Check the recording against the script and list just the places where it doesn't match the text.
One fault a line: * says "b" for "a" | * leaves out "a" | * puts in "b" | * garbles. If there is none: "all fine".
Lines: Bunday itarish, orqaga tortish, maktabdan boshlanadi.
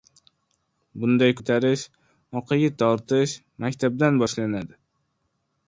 all fine